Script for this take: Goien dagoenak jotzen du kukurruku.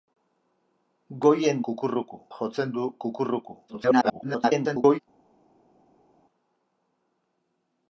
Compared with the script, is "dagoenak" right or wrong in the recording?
wrong